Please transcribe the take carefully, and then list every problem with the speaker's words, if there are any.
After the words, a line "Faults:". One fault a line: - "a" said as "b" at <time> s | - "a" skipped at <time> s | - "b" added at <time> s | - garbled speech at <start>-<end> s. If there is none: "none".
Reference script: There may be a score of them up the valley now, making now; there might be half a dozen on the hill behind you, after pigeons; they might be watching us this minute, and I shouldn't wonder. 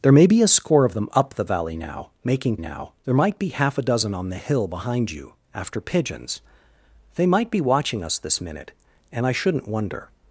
There may be a score of them up the valley now, making now; there might be half a dozen on the hill behind you, after pigeons; they might be watching us this minute, and I shouldn't wonder.
Faults:
none